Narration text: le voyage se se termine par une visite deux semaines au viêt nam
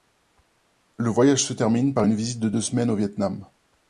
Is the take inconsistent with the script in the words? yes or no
yes